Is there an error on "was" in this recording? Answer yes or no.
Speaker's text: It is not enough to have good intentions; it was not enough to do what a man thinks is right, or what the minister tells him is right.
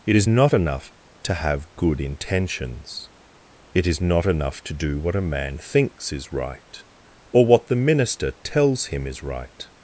yes